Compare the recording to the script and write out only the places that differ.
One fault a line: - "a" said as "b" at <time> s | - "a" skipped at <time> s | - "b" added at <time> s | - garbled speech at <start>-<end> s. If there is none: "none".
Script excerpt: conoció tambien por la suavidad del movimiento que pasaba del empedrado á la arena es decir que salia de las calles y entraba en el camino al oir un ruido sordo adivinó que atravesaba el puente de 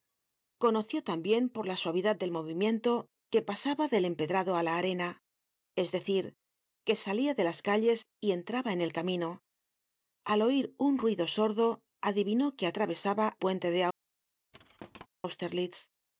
- "el" skipped at 13.3 s